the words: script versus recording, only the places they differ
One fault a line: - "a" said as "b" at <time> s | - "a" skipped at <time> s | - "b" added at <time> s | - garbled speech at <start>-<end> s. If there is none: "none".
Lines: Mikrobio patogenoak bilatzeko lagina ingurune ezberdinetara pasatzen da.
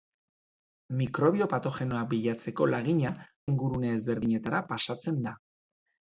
none